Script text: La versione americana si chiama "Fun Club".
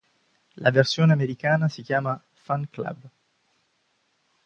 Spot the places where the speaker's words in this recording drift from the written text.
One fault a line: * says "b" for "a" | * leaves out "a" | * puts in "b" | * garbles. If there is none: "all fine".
all fine